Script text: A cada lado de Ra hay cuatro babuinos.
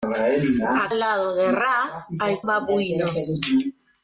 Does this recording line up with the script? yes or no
no